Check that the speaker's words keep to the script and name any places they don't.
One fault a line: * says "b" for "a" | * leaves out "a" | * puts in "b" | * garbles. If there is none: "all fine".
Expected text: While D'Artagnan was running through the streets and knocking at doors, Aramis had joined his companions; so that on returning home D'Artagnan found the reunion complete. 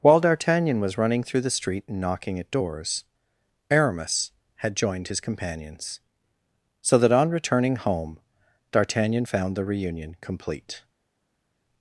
* says "street" for "streets"